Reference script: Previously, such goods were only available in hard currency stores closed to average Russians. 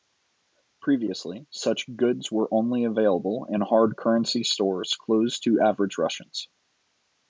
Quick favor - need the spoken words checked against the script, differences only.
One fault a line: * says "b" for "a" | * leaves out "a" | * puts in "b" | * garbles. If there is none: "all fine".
all fine